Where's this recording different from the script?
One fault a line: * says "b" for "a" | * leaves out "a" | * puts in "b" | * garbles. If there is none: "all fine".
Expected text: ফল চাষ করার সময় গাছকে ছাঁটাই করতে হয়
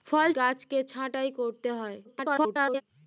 * leaves out "চাষ করার সময়"
* garbles